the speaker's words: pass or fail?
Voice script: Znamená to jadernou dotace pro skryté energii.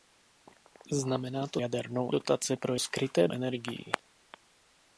pass